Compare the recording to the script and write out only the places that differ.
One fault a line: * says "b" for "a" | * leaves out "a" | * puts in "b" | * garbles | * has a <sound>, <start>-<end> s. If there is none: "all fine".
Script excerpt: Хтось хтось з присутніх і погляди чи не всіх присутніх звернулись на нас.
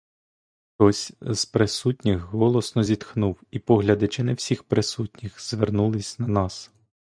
* leaves out "хтось"
* puts in "голосно зітхнув"